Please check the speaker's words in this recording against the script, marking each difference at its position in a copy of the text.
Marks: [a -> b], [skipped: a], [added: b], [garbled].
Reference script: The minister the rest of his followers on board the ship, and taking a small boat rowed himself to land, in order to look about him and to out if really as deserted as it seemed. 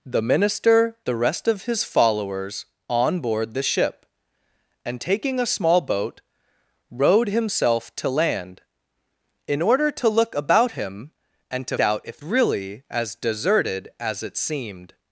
The minister the rest of his followers on board the ship, and taking a small boat rowed himself to land, in order to look about him and to out if really as deserted as it seemed.